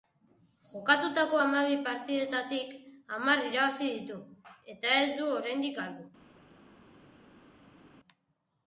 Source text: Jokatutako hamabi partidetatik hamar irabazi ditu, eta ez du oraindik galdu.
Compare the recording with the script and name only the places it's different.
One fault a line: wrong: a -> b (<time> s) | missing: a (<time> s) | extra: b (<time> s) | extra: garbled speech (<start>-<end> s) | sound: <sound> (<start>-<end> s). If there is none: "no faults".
no faults